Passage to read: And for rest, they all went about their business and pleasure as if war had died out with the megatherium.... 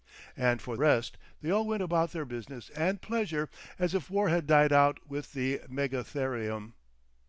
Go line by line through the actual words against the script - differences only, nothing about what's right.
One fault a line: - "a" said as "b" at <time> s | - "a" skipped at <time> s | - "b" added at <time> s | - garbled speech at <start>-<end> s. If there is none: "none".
none